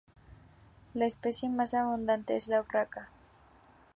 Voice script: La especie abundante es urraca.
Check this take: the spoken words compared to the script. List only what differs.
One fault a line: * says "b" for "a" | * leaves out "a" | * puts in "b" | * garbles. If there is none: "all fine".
* puts in "más"
* puts in "la"